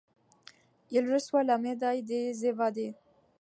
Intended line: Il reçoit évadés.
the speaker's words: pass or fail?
fail